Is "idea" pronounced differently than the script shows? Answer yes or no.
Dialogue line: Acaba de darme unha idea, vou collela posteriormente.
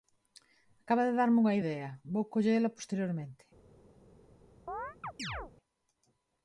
no